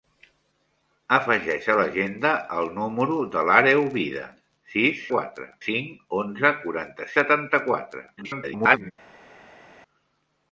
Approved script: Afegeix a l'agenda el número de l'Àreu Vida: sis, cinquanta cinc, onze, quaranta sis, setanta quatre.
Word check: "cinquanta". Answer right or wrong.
wrong